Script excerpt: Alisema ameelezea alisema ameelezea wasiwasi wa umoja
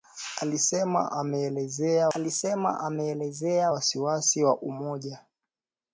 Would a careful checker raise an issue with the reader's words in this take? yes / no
no